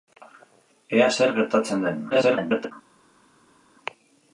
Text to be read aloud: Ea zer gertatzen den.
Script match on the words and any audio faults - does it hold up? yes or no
no